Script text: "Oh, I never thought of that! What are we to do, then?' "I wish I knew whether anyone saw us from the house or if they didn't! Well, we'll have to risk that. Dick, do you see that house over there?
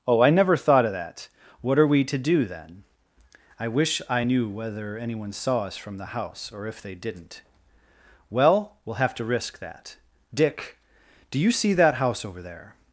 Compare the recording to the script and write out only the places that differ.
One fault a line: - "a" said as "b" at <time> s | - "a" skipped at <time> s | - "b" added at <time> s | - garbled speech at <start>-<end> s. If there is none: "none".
none